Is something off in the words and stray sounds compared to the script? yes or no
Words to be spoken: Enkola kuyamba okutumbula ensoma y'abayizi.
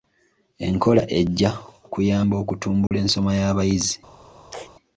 yes